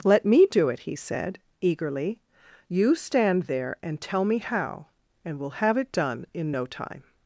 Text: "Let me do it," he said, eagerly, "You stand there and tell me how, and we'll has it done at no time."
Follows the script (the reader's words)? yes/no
no